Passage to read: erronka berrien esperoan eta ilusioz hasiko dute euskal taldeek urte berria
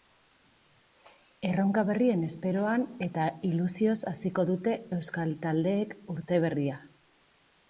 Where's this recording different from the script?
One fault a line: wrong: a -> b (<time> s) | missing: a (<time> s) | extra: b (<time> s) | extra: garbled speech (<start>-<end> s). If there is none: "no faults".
no faults